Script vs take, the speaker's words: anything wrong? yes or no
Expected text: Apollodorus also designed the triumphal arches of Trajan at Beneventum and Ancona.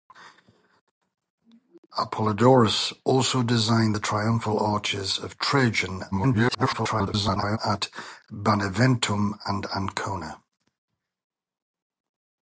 yes